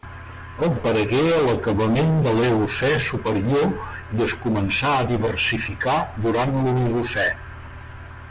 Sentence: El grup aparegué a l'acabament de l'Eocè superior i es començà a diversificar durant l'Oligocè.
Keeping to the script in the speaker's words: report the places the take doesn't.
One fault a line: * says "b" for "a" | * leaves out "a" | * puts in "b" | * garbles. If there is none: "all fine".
* leaves out "grup"